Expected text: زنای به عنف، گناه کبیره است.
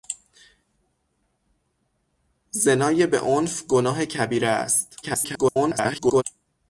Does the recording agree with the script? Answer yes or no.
no